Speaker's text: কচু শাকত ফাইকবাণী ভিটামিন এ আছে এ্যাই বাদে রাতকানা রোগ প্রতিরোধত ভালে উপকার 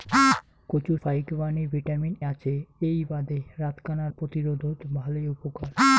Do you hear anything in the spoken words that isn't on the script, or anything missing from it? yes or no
yes